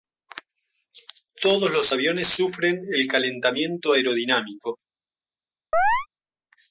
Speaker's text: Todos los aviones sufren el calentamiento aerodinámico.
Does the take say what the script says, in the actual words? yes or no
yes